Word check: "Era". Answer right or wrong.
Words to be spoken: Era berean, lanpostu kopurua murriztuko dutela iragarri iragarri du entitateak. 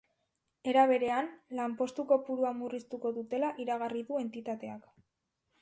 right